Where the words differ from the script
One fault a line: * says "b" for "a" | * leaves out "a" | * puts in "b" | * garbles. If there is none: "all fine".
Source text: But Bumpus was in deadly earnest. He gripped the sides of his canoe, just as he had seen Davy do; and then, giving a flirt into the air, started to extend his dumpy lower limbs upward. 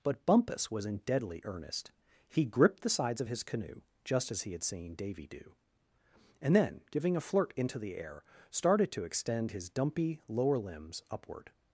all fine